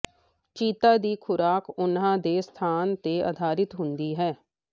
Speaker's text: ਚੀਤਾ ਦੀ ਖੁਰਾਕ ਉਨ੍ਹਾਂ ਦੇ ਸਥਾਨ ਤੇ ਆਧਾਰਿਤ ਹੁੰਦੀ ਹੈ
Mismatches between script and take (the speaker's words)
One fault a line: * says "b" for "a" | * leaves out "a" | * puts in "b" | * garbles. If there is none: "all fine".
all fine